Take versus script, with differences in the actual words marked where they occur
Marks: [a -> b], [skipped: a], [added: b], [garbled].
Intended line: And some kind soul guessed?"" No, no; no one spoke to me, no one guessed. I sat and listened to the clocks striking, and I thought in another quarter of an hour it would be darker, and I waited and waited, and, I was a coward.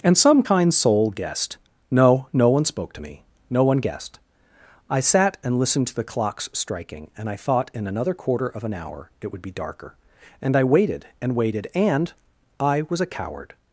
And some kind soul guessed?"" No, no; [skipped: no] one spoke to me, no one guessed. I sat and listened to the clocks striking, and I thought in another quarter of an hour it would be darker, and I waited and waited, and, I was a coward.